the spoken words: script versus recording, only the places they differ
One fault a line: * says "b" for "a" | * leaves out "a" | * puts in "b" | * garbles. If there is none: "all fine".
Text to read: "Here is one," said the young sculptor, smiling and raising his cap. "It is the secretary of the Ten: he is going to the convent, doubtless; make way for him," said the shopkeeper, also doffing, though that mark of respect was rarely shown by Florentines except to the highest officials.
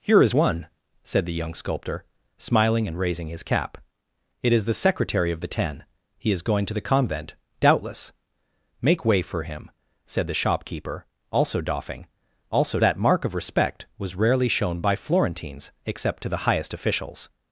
* says "also" for "though"